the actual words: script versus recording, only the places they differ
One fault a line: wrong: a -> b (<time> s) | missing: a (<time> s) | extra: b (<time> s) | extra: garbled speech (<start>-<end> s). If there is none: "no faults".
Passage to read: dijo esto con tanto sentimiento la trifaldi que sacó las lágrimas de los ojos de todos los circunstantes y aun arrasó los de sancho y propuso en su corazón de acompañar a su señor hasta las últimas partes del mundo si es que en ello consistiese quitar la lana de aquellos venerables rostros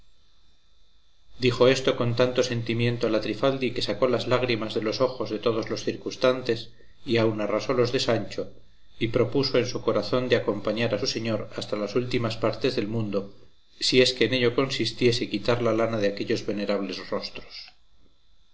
no faults